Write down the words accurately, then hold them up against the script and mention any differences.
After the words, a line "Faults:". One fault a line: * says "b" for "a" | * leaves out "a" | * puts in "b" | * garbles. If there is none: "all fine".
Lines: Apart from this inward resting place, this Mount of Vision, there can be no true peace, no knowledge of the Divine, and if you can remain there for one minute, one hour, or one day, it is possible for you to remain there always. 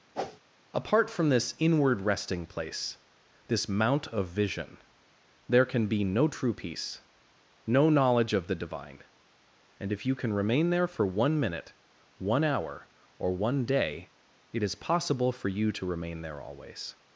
Apart from this inward resting place, this Mount of Vision, there can be no true peace, no knowledge of the Divine, and if you can remain there for one minute, one hour, or one day, it is possible for you to remain there always.
Faults:
all fine